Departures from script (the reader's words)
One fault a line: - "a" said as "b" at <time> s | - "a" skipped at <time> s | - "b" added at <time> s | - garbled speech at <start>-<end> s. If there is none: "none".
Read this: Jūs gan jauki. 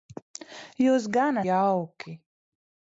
none